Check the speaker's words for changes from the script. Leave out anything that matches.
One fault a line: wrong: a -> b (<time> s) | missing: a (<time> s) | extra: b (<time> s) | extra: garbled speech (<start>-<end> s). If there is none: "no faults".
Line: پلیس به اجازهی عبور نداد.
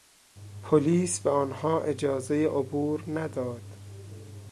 extra: آنها (1.3 s)